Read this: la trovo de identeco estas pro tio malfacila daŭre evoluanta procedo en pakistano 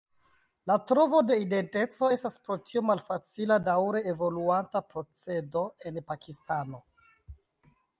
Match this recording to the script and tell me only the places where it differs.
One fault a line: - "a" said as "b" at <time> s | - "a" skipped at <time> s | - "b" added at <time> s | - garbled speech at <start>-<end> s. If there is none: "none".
none